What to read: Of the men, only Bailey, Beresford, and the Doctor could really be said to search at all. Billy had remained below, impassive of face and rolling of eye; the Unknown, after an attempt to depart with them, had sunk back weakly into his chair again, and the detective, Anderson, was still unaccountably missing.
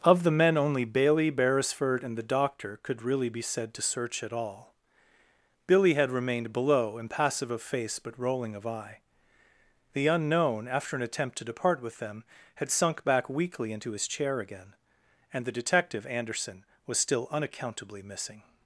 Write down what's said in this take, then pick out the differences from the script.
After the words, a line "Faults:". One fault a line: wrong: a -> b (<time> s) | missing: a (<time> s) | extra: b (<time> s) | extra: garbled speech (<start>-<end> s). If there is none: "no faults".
Of the men, only Bailey, Beresford, and the Doctor could really be said to search at all. Billy had remained below, impassive of face but rolling of eye; the Unknown, after an attempt to depart with them, had sunk back weakly into his chair again, and the detective, Anderson, was still unaccountably missing.
Faults:
wrong: and -> but (8.0 s)